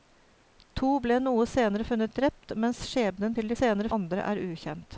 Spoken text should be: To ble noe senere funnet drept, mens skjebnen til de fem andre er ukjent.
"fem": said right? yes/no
no